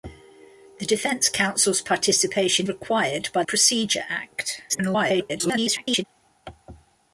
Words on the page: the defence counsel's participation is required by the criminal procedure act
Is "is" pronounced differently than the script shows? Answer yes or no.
yes